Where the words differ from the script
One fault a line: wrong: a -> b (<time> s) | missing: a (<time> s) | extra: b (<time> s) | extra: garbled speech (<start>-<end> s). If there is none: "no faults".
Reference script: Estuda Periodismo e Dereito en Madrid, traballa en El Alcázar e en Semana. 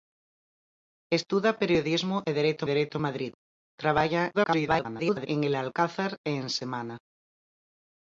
extra: Dereito (2.7 s)
extra: garbled speech (4.3-5.3 s)